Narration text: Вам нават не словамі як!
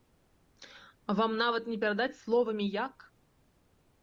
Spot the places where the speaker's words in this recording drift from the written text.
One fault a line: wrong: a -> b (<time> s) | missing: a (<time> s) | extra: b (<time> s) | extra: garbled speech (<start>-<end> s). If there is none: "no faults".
extra: перадаць (1.8 s)